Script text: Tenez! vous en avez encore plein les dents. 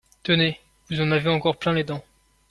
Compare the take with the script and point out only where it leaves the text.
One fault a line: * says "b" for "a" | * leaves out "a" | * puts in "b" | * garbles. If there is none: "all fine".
all fine